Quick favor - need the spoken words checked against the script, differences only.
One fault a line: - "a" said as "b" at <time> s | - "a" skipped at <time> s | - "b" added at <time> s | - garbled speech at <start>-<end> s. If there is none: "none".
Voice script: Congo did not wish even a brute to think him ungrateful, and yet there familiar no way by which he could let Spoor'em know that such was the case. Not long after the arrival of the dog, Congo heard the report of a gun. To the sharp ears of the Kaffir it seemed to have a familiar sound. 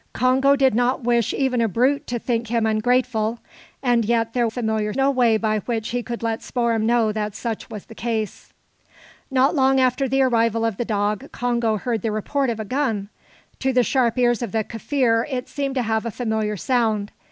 none